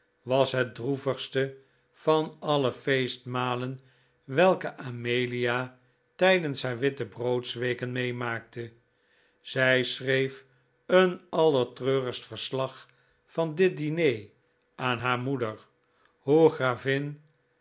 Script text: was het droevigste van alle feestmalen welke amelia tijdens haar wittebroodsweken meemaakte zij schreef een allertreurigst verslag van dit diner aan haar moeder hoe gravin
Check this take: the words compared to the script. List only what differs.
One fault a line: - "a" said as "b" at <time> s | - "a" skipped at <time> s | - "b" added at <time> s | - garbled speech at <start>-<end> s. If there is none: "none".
none